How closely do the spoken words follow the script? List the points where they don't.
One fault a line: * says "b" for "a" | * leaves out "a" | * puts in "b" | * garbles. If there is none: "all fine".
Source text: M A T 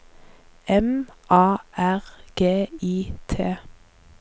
* puts in "R G I"